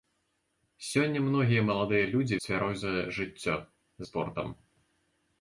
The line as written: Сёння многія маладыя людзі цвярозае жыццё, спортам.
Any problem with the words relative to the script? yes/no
no